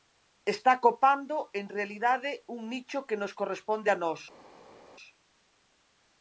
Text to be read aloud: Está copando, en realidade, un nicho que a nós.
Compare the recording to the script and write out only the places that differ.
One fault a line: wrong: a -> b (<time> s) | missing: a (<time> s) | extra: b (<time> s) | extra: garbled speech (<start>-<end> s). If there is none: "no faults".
extra: nos corresponde (3.2 s)